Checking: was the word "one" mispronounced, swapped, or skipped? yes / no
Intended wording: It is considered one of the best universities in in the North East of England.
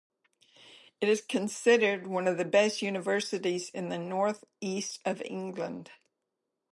no